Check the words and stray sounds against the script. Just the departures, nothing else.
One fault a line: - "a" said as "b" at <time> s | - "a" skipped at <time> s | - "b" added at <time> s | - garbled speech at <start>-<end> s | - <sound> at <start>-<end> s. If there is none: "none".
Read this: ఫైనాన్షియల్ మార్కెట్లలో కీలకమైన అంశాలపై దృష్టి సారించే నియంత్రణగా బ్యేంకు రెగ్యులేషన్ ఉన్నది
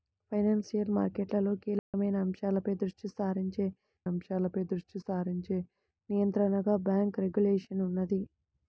- dropout at 1.8-1.9 s
- "అంశాలపై దృష్టి సారించే" added at 4.1 s